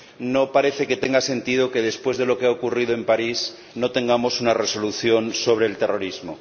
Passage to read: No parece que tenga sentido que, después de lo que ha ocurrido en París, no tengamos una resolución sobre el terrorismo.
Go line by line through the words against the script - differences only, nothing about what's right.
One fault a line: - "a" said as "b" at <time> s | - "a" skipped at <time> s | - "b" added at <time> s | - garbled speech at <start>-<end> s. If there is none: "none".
none